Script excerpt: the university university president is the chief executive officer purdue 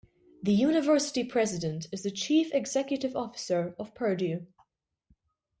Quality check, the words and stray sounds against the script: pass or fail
fail